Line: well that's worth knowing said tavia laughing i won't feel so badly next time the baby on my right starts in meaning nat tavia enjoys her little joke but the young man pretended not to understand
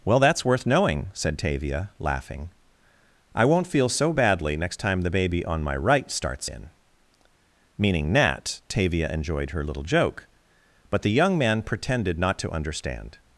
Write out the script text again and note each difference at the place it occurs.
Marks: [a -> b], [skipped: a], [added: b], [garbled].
well that's worth knowing said tavia laughing i won't feel so badly next time the baby on my right starts in meaning nat tavia [enjoys -> enjoyed] her little joke but the young man pretended not to understand